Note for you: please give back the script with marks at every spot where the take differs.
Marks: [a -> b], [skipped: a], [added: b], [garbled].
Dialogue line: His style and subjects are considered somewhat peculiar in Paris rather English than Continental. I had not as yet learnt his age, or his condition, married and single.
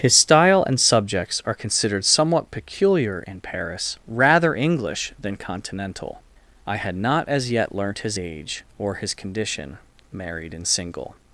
His style and subjects are considered somewhat peculiar in Paris rather English than Continental. I had not as yet learnt his age, or his condition, married and single.